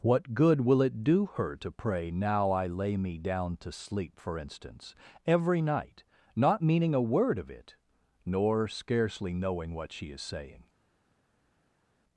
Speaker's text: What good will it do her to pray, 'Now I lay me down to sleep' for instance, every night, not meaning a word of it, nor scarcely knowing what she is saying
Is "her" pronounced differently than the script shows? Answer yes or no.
no